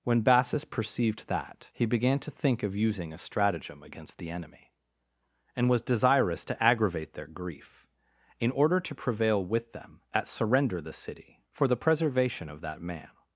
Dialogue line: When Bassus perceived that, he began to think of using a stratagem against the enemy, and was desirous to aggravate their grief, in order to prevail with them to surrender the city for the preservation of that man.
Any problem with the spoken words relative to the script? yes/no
yes